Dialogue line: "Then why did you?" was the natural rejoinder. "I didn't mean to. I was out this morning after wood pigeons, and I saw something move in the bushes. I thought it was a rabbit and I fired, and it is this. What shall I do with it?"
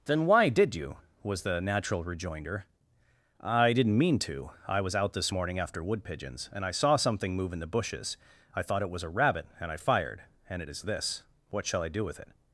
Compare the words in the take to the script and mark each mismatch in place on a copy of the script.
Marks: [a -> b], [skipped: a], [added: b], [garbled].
"Then why did you?" was the natural rejoinder. "I didn't mean to. I was out this morning after wood pigeons, and I saw something move in the bushes. I thought it was a rabbit and I fired, and it is this. What shall I do with it?"